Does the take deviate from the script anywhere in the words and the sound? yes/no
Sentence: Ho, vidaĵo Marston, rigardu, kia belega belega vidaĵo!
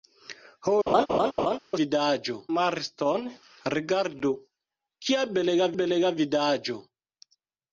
yes